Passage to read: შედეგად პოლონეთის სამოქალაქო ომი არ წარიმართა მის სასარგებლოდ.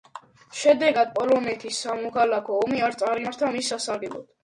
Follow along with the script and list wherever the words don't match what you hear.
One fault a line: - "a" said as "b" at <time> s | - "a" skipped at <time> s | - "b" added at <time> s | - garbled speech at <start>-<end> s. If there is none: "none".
none